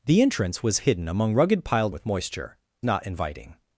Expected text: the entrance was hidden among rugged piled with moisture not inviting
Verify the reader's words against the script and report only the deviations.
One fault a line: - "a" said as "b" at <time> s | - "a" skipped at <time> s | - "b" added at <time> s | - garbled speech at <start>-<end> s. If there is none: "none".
none